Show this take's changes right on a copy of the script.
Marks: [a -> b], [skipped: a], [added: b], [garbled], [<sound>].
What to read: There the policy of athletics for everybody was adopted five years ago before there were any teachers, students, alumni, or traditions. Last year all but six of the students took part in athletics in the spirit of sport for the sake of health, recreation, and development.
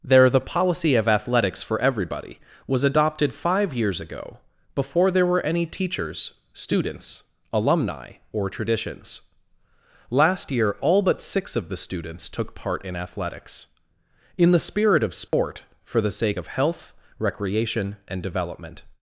There the policy of athletics for everybody was adopted five years ago before there were any teachers, students, alumni, or traditions. Last year all but six of the students took part in athletics in the spirit of sport [dropout] for the sake of health, recreation, and development.